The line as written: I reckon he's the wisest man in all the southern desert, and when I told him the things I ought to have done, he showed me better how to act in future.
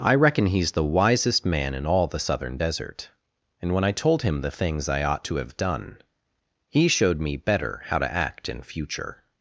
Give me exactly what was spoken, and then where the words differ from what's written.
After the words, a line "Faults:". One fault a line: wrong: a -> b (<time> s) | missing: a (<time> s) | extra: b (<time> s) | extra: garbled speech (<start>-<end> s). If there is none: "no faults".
I reckon he's the wisest man in all the southern desert, and when I told him the things I ought to have done, he showed me better how to act in future.
Faults:
no faults